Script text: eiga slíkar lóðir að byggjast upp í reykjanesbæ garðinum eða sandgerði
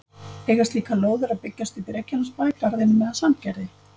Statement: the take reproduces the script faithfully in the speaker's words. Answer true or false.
true